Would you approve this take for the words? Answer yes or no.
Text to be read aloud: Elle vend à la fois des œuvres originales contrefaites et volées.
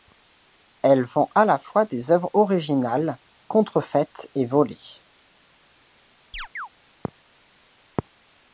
yes